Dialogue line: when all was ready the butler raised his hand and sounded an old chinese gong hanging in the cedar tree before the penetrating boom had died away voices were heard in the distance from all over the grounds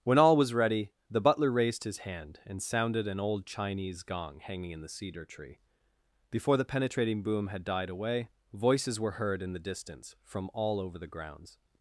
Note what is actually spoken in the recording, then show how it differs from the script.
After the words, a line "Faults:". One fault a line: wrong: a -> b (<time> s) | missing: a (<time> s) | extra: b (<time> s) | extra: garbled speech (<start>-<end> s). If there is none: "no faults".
when all was ready the butler raised his hand and sounded an old chinese gong hanging in the cedar tree before the penetrating boom had died away voices were heard in the distance from all over the grounds
Faults:
no faults